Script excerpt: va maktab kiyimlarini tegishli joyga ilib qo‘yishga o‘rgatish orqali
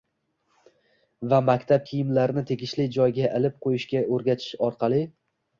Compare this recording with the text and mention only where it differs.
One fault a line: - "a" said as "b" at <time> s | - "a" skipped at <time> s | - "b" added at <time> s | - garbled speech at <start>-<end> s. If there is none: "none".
none